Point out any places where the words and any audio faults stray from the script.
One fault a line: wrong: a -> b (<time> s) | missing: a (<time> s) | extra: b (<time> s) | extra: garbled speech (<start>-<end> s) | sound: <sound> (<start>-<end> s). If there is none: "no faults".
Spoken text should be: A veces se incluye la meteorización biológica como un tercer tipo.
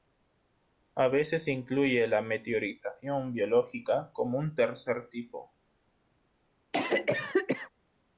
sound: cough (6.7-7.7 s)